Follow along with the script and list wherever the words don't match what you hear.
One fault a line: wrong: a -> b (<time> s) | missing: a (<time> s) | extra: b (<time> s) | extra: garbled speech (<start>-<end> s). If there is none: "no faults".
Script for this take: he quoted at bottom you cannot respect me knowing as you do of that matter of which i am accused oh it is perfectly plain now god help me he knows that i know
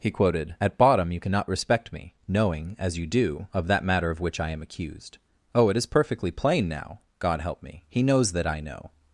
no faults